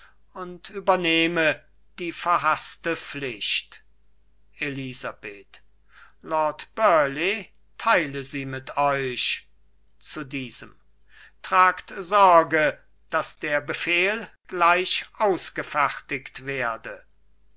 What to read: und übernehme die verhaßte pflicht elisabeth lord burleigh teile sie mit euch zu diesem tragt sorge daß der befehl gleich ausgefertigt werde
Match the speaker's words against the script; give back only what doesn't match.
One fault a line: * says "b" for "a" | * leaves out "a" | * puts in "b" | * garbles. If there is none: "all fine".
all fine